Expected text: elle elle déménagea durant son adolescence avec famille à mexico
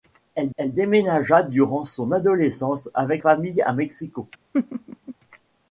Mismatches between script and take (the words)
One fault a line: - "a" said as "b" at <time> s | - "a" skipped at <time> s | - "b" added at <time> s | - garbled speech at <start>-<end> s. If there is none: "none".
none